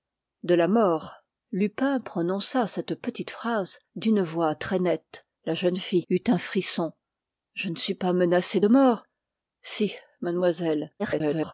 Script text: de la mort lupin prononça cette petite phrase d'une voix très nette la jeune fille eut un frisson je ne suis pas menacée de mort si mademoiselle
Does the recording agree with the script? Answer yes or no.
no